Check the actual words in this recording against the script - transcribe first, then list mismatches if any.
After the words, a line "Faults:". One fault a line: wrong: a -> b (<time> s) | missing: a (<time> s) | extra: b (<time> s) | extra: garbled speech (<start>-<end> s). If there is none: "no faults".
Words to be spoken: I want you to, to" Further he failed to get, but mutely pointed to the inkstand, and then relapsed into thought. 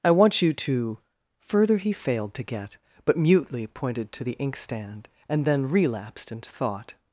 I want you to" Further he failed to get, but mutely pointed to the inkstand, and then relapsed into thought.
Faults:
missing: to (1.0 s)